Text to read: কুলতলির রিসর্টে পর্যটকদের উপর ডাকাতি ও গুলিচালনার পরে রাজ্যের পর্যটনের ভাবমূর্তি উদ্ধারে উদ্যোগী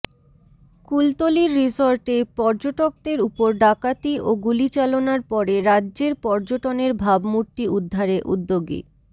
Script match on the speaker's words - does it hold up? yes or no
yes